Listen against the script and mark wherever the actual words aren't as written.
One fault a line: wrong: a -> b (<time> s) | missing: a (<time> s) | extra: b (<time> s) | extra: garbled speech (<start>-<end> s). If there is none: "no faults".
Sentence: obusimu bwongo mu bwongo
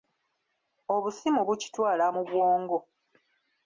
wrong: bwongo -> bukitwala (1.5 s)